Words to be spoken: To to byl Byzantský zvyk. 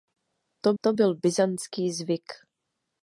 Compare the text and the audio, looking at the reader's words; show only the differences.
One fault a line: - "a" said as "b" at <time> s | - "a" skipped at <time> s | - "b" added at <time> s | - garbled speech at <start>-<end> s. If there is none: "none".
none